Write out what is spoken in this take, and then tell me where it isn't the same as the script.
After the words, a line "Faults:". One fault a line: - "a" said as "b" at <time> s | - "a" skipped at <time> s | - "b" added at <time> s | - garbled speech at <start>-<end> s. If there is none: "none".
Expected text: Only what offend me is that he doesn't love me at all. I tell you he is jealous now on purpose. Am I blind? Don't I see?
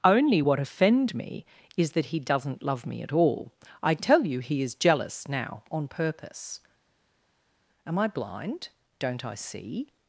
Only what offend me is that he doesn't love me at all. I tell you he is jealous now on purpose. Am I blind? Don't I see?
Faults:
none